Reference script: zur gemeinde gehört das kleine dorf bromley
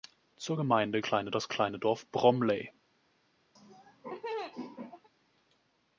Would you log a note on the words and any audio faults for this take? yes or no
yes